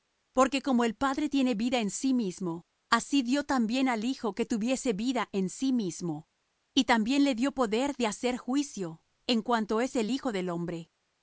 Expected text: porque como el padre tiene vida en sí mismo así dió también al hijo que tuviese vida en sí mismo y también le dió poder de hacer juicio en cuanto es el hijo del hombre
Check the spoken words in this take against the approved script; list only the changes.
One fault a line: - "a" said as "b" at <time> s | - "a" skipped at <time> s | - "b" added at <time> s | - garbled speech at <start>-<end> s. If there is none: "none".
none